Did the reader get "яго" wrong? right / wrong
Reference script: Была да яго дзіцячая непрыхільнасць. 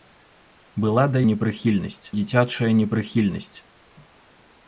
wrong